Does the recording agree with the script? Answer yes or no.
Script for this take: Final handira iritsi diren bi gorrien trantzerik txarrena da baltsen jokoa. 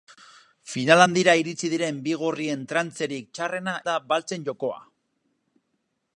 yes